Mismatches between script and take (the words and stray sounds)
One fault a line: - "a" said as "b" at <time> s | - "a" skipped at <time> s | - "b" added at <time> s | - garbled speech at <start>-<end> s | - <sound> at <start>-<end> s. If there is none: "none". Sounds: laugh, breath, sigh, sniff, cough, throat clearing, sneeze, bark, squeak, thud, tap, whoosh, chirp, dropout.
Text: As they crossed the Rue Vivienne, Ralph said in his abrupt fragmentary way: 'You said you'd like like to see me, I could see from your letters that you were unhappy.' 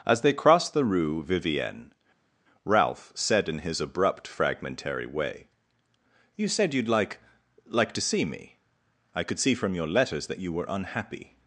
none